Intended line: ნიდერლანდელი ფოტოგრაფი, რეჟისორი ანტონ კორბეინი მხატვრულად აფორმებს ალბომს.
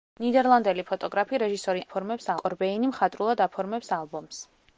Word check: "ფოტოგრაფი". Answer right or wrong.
right